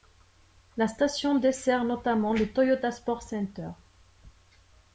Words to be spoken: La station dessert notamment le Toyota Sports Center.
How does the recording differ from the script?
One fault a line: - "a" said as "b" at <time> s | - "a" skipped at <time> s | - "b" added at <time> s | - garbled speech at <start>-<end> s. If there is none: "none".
none